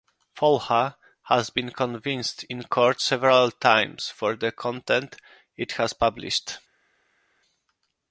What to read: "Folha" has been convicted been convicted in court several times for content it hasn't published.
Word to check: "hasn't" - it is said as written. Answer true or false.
false